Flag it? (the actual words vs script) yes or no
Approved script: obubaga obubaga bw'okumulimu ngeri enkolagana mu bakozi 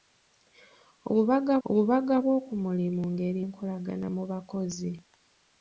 no